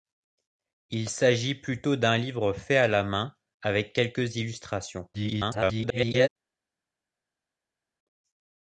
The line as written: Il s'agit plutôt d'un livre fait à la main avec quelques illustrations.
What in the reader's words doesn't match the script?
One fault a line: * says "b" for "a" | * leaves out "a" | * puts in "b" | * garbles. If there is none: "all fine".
* garbles